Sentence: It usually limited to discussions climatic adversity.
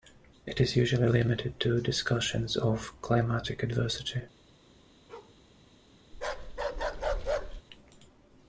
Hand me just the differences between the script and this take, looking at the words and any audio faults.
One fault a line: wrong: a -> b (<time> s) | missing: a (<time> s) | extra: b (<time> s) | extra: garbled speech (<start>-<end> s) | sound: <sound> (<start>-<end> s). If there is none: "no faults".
extra: is (0.6 s)
extra: of (2.6 s)
sound: bark (5.1-5.4 s)
sound: bark (6.1-7.6 s)